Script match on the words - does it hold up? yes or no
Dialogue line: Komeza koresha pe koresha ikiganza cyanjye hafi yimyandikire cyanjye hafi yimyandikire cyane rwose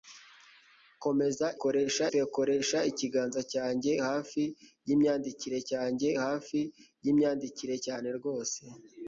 yes